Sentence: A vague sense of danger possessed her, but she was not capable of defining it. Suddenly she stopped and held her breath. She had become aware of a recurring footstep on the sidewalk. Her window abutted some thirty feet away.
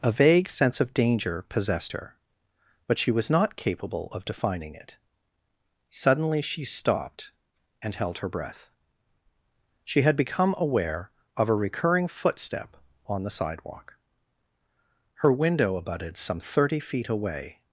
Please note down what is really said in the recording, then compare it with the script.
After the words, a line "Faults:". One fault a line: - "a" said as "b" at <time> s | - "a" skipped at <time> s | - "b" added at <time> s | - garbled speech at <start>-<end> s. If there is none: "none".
A vague sense of danger possessed her, but she was not capable of defining it. Suddenly she stopped and held her breath. She had become aware of a recurring footstep on the sidewalk. Her window abutted some thirty feet away.
Faults:
none